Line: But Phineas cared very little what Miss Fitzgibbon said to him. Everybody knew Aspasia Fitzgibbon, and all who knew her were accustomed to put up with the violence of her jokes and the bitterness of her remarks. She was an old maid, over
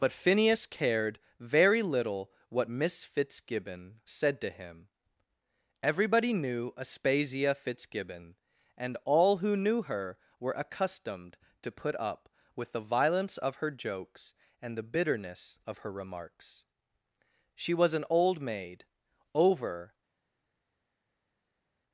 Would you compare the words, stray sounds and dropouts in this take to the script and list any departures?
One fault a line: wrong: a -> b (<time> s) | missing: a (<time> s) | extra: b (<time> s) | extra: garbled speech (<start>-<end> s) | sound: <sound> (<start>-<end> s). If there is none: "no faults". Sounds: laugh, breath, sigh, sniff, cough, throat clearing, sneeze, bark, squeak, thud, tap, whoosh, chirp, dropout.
no faults